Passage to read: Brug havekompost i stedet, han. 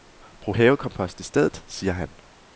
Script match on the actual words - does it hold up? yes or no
no